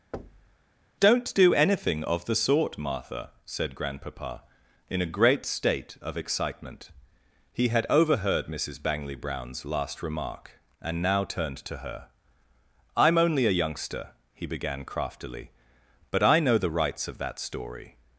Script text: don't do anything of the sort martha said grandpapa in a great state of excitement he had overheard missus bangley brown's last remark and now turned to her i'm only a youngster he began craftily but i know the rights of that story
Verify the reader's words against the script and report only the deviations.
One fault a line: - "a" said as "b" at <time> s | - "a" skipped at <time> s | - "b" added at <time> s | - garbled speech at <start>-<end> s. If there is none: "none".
none